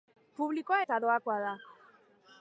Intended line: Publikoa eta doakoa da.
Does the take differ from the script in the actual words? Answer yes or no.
no